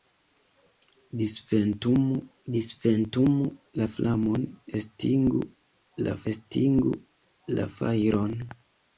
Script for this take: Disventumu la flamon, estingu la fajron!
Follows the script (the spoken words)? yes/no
no